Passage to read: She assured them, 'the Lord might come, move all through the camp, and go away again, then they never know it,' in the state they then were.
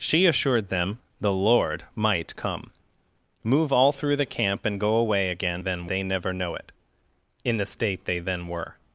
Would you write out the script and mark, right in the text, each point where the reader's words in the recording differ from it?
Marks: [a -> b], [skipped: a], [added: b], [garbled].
She assured them, 'the Lord might come, move all through the camp, and go away again, then they never know it,' in the state they then were.